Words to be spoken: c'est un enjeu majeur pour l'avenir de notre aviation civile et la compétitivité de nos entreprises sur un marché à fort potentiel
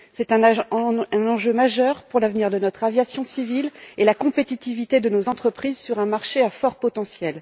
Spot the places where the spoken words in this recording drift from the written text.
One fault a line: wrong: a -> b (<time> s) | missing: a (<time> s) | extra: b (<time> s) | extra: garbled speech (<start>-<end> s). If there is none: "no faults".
no faults